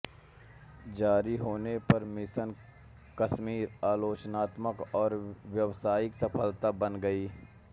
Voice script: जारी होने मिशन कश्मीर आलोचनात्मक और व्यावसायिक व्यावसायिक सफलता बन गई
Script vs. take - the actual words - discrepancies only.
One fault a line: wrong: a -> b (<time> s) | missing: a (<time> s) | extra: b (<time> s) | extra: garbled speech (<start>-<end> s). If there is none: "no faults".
extra: पर (1.9 s)
missing: व्यावसायिक (6.1 s)